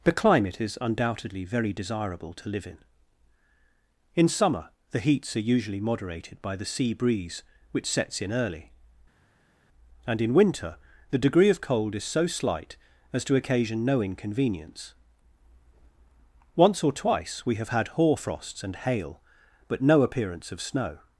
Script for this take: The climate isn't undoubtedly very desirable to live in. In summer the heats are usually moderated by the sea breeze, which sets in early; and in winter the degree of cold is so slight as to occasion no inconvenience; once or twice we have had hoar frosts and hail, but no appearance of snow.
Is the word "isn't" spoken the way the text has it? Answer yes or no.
no